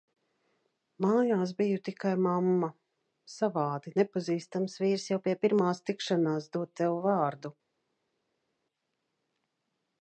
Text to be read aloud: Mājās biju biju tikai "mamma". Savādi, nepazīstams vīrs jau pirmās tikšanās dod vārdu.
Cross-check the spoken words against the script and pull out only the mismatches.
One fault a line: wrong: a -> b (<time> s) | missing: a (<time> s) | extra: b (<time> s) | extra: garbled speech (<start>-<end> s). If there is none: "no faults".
missing: biju (1.8 s)
extra: pie (5.2 s)
extra: tev (6.8 s)